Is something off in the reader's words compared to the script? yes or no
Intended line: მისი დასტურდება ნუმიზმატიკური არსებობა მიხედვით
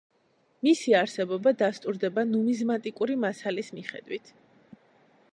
yes